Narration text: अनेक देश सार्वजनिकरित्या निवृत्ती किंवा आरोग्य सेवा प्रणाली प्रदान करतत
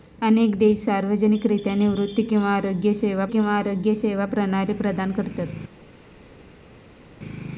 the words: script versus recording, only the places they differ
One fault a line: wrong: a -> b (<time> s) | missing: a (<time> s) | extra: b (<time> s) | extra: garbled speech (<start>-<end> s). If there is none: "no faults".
extra: किंवा आरोग्य सेवा (3.3 s)